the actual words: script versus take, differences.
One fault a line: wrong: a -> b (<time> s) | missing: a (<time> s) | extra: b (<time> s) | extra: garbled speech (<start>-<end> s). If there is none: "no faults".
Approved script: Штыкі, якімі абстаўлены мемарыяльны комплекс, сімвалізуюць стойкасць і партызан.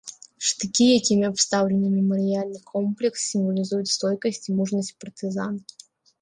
extra: мужнасць (4.6 s)